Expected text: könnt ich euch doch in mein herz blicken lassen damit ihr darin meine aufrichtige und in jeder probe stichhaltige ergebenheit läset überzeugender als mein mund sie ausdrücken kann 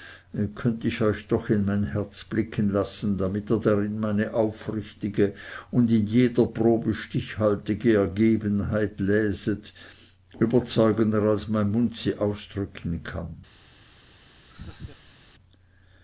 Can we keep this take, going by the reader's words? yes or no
yes